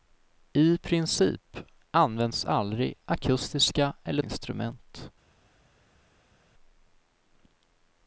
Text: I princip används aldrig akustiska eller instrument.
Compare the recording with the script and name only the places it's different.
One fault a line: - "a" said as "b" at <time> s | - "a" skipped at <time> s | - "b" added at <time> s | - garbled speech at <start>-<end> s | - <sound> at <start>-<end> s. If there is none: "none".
none